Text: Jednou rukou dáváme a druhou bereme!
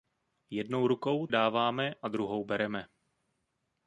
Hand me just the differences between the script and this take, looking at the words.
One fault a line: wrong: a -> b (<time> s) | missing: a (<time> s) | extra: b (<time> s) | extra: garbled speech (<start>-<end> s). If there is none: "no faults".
no faults